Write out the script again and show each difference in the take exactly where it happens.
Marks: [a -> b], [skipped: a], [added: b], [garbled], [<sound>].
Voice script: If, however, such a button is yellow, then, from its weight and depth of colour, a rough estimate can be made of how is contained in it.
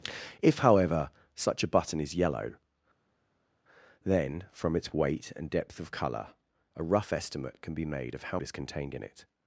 If, however, such a button is yellow, then, from its weight and depth of colour, a rough estimate can be made of how is contained in it.